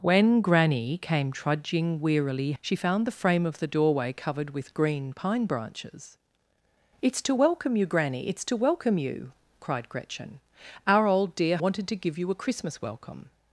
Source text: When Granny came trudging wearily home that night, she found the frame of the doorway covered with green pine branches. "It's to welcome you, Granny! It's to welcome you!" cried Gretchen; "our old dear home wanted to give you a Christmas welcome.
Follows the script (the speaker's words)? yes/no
no